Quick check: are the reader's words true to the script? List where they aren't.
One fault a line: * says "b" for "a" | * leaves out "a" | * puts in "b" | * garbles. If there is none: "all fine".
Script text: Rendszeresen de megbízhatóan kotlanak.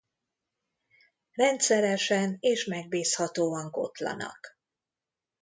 * says "és" for "de"